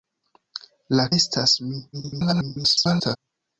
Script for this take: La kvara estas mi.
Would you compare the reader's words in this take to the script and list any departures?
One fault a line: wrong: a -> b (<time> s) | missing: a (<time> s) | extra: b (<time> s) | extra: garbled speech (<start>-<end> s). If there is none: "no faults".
missing: kvara (1.1 s)
extra: garbled speech (1.9-3.2 s)